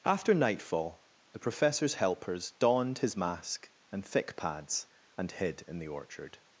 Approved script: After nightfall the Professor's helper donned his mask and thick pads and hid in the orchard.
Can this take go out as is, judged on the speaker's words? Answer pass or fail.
fail